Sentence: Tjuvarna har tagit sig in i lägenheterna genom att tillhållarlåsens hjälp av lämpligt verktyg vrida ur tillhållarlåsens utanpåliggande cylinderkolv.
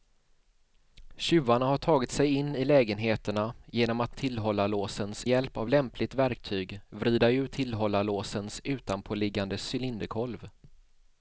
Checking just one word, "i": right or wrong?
right